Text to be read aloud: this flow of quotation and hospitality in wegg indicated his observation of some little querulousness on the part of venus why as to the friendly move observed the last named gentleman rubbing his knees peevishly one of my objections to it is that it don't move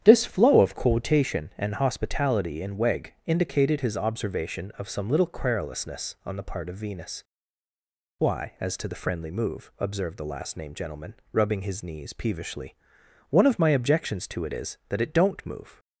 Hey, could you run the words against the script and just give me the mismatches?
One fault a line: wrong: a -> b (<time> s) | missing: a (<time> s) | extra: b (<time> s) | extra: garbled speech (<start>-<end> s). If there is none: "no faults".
no faults